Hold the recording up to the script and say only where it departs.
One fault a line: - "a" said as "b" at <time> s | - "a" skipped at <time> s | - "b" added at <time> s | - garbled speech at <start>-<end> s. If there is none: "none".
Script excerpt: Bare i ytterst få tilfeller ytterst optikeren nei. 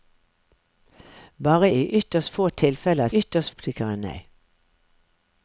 none